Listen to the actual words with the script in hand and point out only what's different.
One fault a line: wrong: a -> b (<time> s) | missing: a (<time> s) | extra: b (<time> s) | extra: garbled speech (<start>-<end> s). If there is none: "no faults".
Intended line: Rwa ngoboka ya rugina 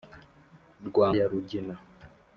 missing: ngoboka (1.1 s)